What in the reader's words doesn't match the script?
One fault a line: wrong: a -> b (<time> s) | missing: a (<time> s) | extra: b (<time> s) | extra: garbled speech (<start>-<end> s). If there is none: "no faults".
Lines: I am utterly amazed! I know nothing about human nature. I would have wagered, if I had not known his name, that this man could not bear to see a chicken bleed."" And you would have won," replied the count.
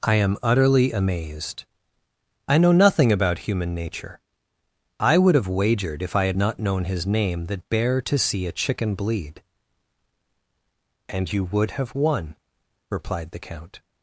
missing: this man could not (7.7 s)